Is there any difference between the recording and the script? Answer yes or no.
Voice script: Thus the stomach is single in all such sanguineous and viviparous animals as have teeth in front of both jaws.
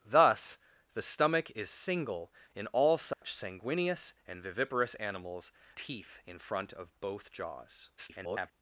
yes